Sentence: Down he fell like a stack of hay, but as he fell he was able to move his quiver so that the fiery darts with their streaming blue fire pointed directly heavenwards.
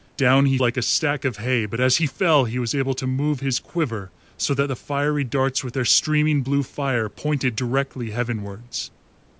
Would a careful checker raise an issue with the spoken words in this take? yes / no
yes